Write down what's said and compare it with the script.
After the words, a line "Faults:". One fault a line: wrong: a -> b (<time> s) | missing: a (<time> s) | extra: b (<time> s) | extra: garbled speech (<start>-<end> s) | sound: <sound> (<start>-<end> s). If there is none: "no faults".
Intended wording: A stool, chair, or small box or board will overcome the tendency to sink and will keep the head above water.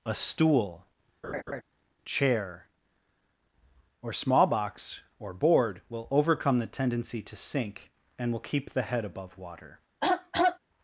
A stool, chair, or small box or board will overcome the tendency to sink and will keep the head above water.
Faults:
sound: laugh (1.2-1.6 s)
sound: throat clearing (10.0-10.6 s)